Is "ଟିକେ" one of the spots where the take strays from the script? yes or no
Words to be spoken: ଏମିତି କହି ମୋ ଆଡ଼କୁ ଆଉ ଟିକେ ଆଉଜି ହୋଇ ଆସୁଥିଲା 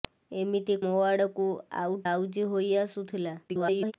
yes